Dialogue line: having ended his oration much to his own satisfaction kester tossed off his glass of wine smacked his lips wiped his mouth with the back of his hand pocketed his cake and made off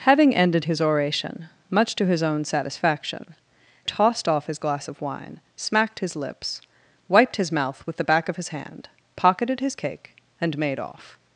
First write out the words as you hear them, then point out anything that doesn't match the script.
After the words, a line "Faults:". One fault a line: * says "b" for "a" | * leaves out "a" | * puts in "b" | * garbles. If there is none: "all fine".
having ended his oration much to his own satisfaction tossed off his glass of wine smacked his lips wiped his mouth with the back of his hand pocketed his cake and made off
Faults:
* leaves out "kester"